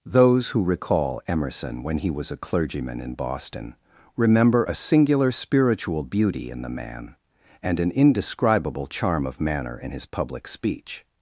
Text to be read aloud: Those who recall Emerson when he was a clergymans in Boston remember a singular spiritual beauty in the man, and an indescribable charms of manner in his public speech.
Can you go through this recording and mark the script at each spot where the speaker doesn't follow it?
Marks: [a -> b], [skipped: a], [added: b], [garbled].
Those who recall Emerson when he was a [clergymans -> clergyman] in Boston remember a singular spiritual beauty in the man, and an indescribable [charms -> charm] of manner in his public speech.